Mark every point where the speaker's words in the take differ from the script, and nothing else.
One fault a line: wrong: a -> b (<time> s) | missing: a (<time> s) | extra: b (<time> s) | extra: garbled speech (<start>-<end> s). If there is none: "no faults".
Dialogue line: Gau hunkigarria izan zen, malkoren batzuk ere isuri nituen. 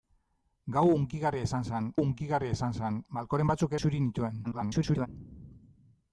extra: hunkigarria izan zen (2.0 s)
missing: ere (3.7 s)
extra: garbled speech (4.4-5.1 s)